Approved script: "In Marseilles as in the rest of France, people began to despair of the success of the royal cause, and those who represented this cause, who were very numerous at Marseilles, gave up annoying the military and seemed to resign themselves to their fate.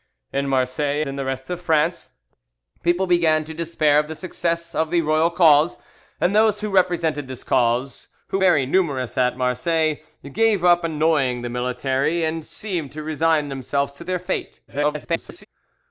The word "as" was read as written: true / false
false